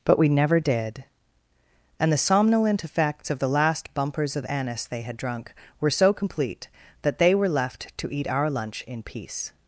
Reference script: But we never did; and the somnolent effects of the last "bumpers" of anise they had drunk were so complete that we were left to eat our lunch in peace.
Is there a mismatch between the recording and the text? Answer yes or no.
yes